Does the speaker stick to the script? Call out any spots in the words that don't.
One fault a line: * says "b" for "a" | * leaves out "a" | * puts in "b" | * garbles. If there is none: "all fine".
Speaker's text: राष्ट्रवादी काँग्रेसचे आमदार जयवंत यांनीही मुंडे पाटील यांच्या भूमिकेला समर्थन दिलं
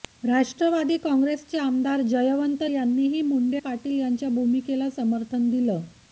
all fine